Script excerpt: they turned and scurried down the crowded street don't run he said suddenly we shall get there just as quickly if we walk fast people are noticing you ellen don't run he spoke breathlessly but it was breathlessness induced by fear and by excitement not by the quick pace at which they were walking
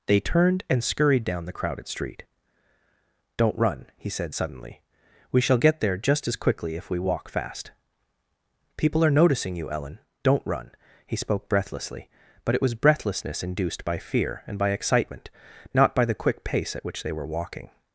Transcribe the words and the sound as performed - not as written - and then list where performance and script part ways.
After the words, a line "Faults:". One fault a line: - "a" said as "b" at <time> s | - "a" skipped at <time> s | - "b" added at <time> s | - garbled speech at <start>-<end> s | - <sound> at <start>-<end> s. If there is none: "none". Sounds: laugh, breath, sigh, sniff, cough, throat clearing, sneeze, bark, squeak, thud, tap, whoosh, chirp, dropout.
they turned and scurried down the crowded street don't run he said suddenly we shall get there just as quickly if we walk fast people are noticing you ellen don't run he spoke breathlessly but it was breathlessness induced by fear and by excitement not by the quick pace at which they were walking
Faults:
none